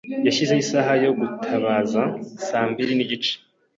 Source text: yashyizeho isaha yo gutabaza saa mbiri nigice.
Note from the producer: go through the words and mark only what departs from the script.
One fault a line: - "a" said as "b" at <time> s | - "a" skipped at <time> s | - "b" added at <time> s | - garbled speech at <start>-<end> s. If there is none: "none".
none